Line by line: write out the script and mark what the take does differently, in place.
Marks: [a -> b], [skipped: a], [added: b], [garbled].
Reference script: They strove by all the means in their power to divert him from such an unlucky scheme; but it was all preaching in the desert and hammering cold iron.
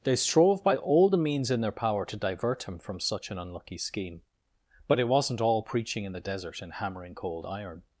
They strove by all the means in their power to divert him from such an unlucky scheme; but it [was -> wasn't] all preaching in the desert and hammering cold iron.